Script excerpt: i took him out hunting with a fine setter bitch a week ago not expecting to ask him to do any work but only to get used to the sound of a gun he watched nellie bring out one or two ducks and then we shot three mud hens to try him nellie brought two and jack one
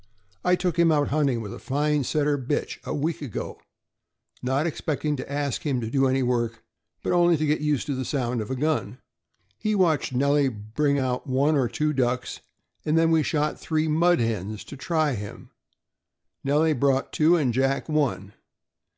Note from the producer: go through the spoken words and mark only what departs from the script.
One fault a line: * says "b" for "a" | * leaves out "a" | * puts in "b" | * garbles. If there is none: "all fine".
all fine